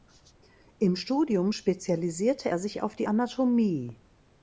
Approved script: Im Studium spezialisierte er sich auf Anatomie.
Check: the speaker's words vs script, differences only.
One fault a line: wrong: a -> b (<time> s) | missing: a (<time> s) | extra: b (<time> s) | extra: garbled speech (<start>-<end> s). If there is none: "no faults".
extra: die (3.0 s)